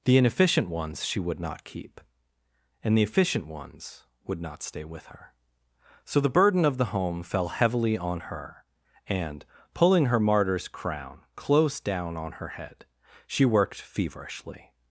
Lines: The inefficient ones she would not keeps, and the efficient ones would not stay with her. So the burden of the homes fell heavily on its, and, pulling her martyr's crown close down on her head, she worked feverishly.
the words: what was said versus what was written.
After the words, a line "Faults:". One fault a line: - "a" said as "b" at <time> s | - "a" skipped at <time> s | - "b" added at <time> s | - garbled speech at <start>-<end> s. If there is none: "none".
The inefficient ones she would not keep, and the efficient ones would not stay with her. So the burden of the home fell heavily on her, and, pulling her martyr's crown close down on her head, she worked feverishly.
Faults:
- "keeps" said as "keep" at 1.6 s
- "homes" said as "home" at 6.8 s
- "its" said as "her" at 8.2 s